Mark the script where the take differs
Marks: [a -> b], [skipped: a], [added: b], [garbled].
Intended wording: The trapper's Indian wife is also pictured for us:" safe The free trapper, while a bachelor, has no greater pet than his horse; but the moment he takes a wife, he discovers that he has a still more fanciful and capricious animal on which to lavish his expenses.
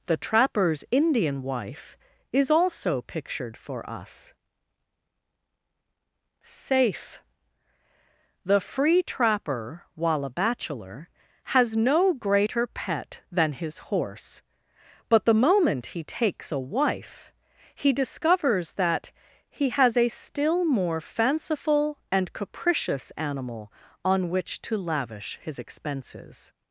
The trapper's Indian wife is also pictured for us:" safe The free trapper, while a bachelor, has no greater pet than his horse; but the moment he takes a wife, he discovers that he has a still more fanciful and capricious animal on which to lavish his expenses.